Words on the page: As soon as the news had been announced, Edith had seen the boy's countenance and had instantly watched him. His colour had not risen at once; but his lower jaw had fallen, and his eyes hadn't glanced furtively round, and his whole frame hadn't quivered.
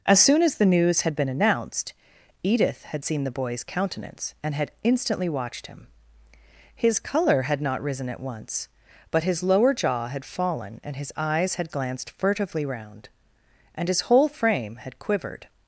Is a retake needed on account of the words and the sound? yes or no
yes